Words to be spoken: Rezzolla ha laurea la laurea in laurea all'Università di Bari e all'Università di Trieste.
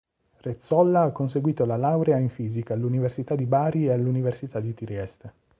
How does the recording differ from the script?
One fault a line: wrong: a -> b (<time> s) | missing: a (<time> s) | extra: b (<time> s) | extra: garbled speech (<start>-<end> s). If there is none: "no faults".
wrong: laurea -> conseguito (1.1 s)
wrong: laurea -> fisica (2.3 s)